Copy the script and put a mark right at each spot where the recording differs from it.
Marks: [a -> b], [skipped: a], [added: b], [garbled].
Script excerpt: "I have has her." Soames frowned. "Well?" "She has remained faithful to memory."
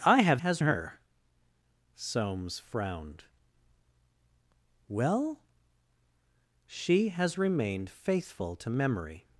"I have has her." Soames frowned. "Well?" "She has remained faithful to memory."